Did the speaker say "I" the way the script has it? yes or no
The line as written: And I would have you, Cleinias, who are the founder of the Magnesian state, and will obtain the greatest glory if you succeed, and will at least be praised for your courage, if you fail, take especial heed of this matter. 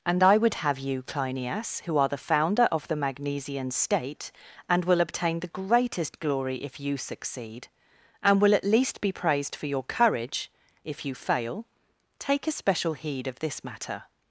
yes